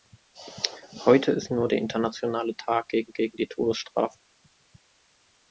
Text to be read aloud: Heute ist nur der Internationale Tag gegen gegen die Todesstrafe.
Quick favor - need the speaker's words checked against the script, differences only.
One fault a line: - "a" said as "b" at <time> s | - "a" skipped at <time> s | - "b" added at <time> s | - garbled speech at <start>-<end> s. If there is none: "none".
none